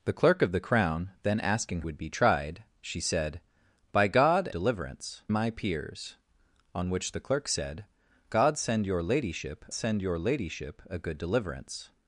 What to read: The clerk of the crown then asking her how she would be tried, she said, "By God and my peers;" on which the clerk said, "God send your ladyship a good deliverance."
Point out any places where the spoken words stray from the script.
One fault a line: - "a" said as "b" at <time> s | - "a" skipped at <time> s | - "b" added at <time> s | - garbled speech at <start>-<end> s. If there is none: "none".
- "her how she" skipped at 1.8 s
- "and" said as "deliverance" at 4.5 s
- "send your ladyship" added at 9.7 s